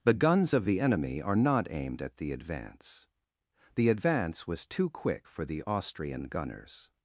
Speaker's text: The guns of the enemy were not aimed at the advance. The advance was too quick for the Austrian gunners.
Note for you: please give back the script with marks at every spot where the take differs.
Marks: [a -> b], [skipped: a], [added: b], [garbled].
The guns of the enemy [were -> are] not aimed at the advance. The advance was too quick for the Austrian gunners.